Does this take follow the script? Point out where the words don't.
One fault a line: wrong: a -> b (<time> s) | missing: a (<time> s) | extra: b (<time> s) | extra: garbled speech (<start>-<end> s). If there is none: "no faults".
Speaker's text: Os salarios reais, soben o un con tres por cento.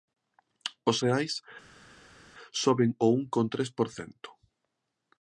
missing: salarios (0.9 s)